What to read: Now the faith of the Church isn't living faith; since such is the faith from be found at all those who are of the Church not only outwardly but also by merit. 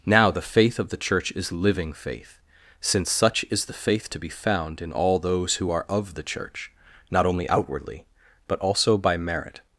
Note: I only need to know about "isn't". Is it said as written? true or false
false